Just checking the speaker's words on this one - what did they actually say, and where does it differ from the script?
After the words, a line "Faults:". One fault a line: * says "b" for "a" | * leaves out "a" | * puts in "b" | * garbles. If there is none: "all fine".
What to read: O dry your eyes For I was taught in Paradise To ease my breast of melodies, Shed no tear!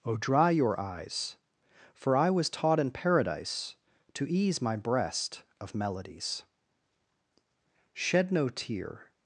O dry your eyes For I was taught in Paradise To ease my breast of melodies, Shed no tear!
Faults:
all fine